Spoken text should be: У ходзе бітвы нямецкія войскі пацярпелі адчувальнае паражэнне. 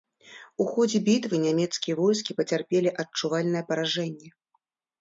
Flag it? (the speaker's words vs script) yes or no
no